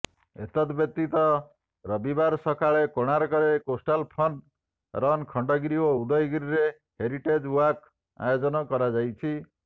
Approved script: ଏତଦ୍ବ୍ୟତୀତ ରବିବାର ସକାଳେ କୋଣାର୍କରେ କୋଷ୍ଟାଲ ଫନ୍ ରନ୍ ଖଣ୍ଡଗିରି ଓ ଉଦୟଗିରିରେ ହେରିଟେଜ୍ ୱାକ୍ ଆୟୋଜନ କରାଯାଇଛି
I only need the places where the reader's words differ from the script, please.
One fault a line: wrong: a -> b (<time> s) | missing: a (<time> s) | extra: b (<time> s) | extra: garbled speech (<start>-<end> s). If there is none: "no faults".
no faults